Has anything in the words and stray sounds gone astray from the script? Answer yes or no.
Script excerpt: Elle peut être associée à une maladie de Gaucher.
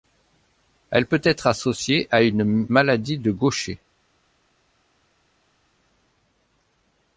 no